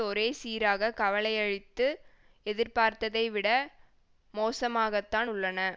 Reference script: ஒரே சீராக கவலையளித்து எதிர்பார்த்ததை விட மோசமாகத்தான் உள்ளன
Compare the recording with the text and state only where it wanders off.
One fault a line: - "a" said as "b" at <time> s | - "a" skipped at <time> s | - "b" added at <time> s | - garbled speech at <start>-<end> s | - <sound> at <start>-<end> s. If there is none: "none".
none